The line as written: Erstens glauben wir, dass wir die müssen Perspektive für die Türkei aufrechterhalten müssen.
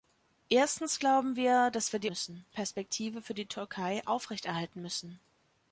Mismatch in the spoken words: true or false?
false